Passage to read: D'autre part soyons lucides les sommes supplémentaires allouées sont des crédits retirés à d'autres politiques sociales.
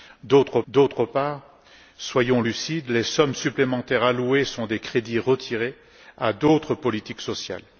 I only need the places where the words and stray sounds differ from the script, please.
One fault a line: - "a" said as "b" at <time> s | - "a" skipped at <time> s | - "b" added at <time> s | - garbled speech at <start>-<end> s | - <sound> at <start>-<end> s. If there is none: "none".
- "d'autre" added at 0.7 s